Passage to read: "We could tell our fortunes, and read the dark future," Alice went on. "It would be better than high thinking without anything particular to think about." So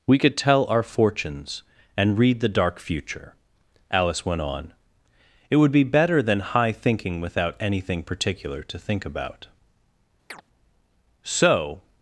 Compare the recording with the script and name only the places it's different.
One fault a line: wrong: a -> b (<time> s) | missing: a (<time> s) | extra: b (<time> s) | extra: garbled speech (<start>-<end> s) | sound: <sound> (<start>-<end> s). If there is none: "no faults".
sound: chirp (10.3-10.4 s)